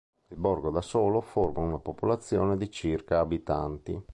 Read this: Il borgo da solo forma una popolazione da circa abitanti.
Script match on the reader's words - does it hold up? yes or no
no